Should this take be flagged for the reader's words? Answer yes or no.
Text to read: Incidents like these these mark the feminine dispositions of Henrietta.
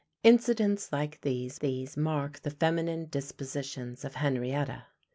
no